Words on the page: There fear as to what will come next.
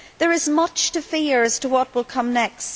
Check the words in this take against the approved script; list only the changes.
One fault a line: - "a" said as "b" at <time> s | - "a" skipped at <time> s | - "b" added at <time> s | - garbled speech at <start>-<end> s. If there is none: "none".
- "is much to" added at 0.3 s